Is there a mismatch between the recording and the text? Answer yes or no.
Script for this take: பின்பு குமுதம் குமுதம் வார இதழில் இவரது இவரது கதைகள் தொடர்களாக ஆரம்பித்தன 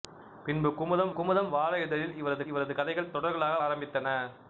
no